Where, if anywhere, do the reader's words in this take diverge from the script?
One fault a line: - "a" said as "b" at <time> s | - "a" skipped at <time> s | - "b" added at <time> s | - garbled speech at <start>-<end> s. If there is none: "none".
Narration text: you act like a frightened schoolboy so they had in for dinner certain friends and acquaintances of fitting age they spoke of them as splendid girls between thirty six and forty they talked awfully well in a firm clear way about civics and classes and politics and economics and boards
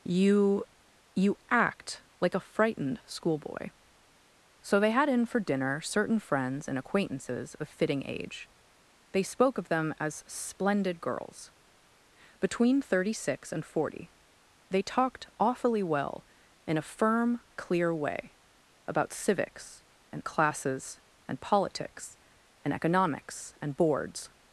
- "you" added at 1.1 s